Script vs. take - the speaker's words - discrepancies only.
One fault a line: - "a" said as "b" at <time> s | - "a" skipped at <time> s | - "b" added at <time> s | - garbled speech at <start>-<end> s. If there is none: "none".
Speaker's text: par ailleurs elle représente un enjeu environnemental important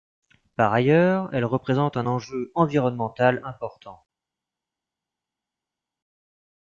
none